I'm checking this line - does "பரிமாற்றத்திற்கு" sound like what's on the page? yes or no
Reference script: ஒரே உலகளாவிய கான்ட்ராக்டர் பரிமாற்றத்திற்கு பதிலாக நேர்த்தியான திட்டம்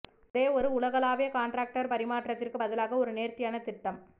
yes